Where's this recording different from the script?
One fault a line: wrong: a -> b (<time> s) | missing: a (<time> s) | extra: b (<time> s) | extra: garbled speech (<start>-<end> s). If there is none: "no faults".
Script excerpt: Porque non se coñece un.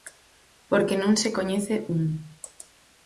no faults